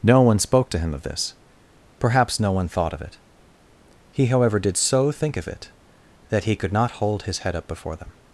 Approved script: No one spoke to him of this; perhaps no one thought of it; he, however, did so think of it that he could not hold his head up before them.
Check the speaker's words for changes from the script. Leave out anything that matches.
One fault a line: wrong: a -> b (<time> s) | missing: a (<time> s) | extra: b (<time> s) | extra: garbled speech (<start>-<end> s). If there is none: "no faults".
no faults